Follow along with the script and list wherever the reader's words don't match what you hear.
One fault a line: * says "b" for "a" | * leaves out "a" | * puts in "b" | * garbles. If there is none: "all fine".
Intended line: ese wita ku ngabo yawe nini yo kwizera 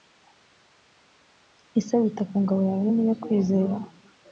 all fine